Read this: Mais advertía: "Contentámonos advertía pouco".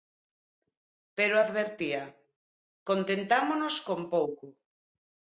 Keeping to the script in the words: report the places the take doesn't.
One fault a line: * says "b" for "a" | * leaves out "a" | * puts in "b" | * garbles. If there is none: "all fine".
* says "Pero" for "Mais"
* says "con" for "advertía"